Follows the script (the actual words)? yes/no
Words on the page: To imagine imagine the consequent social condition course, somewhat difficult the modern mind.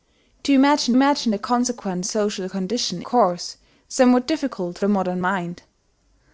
yes